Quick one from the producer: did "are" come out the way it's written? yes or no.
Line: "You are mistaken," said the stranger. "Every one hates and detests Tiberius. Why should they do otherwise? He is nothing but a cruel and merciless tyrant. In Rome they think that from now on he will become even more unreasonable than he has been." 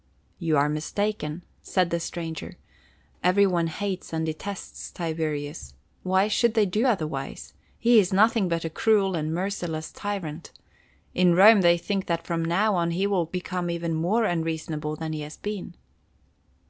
yes